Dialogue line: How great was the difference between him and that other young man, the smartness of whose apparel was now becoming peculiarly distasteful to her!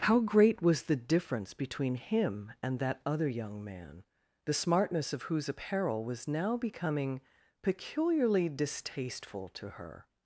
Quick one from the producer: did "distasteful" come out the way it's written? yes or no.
yes